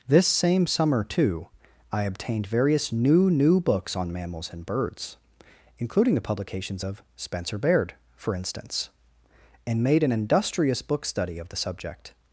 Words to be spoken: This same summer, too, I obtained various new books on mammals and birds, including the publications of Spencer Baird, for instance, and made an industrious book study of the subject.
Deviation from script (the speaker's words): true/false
true